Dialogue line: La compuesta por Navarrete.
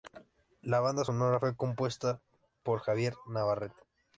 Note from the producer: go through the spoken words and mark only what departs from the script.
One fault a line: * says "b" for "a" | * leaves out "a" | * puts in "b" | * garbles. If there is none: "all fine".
* puts in "banda sonora fue"
* puts in "Javier"